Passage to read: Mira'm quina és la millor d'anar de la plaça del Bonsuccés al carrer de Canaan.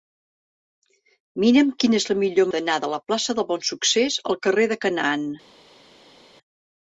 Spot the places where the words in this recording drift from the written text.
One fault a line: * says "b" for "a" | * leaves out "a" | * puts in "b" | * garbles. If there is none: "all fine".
all fine